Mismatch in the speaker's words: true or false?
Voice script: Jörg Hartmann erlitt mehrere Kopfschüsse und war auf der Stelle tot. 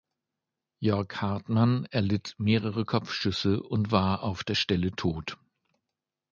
false